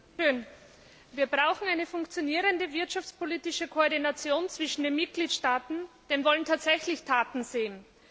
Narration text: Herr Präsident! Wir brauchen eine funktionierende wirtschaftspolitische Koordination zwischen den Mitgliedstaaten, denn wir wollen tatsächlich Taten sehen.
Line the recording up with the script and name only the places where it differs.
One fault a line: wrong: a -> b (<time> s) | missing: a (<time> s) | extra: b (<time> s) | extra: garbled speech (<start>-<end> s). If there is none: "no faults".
missing: wir (6.2 s)